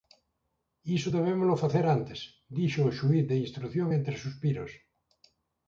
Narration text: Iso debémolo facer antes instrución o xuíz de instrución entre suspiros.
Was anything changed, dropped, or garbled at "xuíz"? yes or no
no